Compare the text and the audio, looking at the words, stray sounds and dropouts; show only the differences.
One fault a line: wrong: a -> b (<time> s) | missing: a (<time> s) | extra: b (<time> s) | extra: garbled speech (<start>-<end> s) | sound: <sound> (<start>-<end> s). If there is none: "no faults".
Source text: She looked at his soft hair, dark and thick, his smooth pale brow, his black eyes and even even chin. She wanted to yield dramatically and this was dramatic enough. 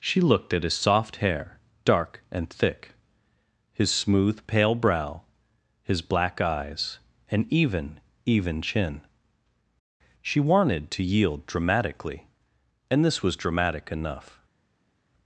no faults